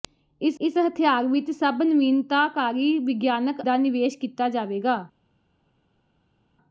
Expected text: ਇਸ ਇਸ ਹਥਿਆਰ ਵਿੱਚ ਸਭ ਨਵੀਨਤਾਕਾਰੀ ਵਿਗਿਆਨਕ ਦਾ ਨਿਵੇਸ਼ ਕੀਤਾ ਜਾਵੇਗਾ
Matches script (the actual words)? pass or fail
pass